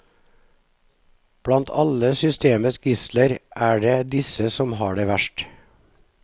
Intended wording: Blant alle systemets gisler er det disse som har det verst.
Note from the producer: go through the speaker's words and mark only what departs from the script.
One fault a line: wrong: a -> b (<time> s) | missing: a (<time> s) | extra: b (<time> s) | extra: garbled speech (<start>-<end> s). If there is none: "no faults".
no faults